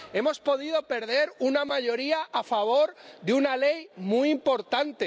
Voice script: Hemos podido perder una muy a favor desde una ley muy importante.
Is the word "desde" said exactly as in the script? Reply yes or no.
no